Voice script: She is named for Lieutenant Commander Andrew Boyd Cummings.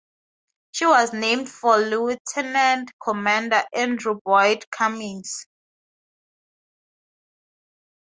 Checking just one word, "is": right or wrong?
wrong